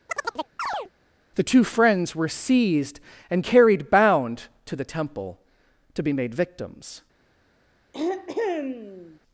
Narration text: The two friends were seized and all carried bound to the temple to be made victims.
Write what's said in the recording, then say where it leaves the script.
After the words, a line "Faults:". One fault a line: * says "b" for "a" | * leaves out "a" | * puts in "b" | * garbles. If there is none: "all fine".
The two friends were seized and carried bound to the temple to be made victims.
Faults:
* leaves out "all"